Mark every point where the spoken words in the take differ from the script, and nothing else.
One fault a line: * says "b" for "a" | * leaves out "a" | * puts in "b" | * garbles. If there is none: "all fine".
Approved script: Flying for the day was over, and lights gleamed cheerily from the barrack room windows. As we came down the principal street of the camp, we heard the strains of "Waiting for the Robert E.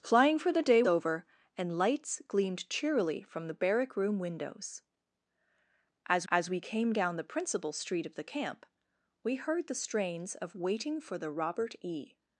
* leaves out "was"
* puts in "as"